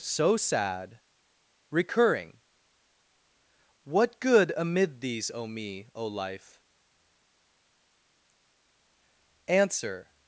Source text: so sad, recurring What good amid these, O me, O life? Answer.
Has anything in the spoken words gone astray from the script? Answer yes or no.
no